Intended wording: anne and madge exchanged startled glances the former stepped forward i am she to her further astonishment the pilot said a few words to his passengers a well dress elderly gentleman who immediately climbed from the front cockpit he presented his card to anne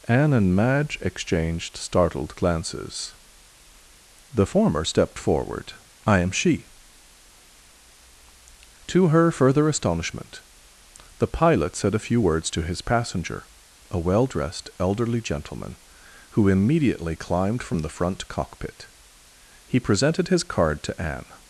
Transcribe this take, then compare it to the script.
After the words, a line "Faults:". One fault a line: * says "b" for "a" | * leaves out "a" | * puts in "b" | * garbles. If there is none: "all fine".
anne and madge exchanged startled glances the former stepped forward i am she to her further astonishment the pilot said a few words to his passenger a well dressed elderly gentleman who immediately climbed from the front cockpit he presented his card to anne
Faults:
* says "passenger" for "passengers"
* says "dressed" for "dress"